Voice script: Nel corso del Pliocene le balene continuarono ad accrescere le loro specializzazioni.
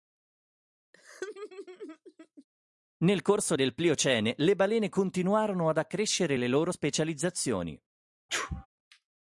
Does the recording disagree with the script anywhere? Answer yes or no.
no